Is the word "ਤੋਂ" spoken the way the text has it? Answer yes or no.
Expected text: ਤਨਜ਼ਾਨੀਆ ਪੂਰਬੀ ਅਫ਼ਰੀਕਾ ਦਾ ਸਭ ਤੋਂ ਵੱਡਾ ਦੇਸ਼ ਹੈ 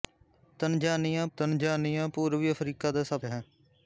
no